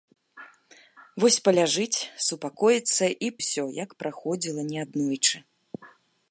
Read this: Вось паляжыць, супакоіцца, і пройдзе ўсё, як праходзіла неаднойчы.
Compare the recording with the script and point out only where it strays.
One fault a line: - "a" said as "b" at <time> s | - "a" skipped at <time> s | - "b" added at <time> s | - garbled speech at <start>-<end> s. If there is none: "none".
- "пройдзе" skipped at 3.3 s